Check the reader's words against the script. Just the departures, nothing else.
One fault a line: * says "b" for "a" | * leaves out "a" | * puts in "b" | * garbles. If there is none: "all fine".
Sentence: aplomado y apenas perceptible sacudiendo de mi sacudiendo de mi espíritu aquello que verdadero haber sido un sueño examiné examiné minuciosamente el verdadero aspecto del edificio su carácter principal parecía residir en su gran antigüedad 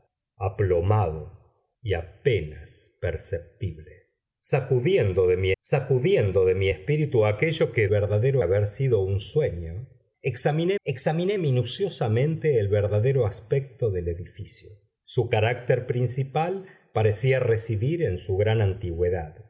all fine